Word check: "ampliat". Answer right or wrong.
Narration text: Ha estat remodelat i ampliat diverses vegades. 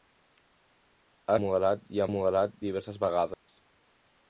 wrong